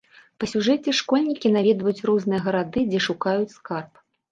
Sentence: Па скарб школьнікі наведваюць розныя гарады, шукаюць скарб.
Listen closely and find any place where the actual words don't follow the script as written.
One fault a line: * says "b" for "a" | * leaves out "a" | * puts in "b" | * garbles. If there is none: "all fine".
* says "сюжэце" for "скарб"
* puts in "дзе"